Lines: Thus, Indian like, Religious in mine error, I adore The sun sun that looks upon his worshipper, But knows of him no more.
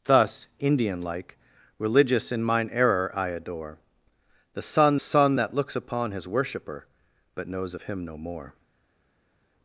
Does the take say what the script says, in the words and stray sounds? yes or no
yes